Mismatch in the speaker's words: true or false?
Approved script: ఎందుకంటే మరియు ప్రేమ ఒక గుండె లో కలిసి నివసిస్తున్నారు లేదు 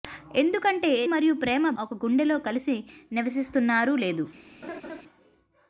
false